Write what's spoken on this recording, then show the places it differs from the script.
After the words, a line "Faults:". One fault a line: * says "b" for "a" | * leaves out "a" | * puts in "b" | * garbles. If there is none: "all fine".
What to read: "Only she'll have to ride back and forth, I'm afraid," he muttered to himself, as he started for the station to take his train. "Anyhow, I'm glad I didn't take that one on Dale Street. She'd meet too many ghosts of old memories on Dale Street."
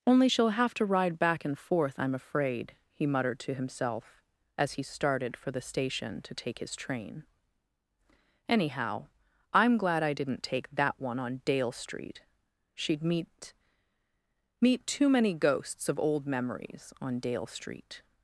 "Only she'll have to ride back and forth, I'm afraid," he muttered to himself, as he started for the station to take his train. "Anyhow, I'm glad I didn't take that one on Dale Street. She'd meet meet too many ghosts of old memories on Dale Street."
Faults:
* puts in "meet"